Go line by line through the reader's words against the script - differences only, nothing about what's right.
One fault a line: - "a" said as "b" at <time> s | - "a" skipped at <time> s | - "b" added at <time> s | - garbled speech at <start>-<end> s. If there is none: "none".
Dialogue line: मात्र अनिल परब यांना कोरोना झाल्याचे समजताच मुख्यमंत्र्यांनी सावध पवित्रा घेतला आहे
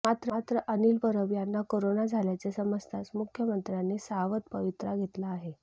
none